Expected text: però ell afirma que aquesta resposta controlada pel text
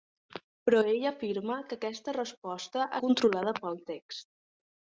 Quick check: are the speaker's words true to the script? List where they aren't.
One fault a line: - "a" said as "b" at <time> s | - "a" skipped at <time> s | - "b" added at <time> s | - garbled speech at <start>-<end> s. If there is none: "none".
none